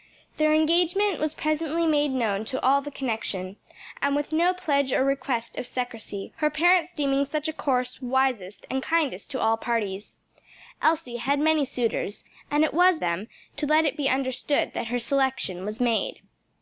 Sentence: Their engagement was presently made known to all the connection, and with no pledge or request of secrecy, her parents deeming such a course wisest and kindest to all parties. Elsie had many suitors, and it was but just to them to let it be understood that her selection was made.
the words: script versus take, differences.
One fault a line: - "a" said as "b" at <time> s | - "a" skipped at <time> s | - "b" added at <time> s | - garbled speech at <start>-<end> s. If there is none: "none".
- "but just to" skipped at 13.0 s